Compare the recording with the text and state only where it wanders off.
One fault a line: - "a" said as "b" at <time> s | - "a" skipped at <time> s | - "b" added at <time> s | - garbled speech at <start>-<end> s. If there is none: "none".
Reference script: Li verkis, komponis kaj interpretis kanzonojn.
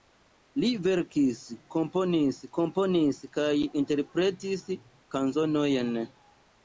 - "komponis" added at 2.6 s